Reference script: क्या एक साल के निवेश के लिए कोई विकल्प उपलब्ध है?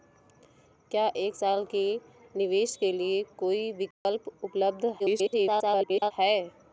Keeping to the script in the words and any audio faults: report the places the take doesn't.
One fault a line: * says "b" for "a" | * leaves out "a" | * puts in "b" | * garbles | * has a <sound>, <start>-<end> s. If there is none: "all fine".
* has a dropout, 3.9-4.1 s
* garbles